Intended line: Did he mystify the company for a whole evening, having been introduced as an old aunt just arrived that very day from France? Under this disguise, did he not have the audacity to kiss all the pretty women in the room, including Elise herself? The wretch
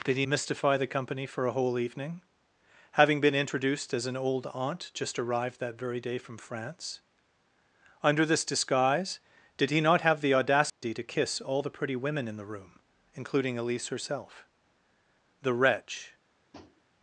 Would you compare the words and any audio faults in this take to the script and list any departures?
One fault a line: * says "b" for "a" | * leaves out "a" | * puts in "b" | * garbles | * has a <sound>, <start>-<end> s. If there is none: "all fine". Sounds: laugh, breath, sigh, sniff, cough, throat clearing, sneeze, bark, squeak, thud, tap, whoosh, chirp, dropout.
* has a dropout, 10.7-10.8 s
* has a tap, 16.5-16.8 s